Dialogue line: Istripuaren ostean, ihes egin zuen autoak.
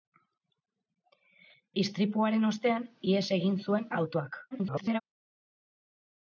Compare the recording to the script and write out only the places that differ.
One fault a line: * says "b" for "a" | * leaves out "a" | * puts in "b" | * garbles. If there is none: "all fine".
* garbles